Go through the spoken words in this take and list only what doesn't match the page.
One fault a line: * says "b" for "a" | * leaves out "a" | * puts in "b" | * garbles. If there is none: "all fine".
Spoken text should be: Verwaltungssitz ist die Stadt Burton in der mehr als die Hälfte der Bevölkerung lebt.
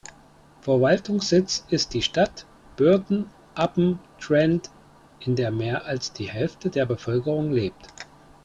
* puts in "upon Trent"